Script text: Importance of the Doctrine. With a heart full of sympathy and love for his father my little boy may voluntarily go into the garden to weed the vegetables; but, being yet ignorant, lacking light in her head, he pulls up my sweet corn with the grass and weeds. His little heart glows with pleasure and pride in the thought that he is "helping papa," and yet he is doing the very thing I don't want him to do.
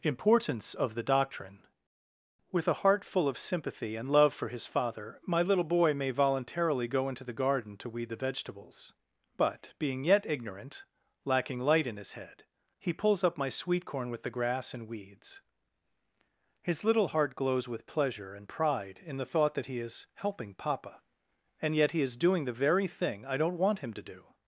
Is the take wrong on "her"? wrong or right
wrong